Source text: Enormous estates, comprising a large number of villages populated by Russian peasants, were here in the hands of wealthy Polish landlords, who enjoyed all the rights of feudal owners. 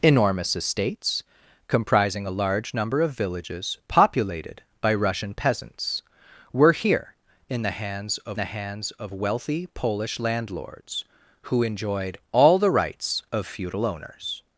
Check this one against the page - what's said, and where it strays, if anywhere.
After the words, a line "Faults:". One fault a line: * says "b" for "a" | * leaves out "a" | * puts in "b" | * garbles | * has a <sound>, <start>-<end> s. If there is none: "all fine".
Enormous estates, comprising a large number of villages populated by Russian peasants, were here in the hands of the hands of wealthy Polish landlords, who enjoyed all the rights of feudal owners.
Faults:
* puts in "the hands of"